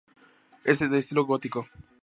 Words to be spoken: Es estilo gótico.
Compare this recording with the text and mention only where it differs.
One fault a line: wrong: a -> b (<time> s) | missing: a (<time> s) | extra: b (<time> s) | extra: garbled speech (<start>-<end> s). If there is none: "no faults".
extra: de (0.8 s)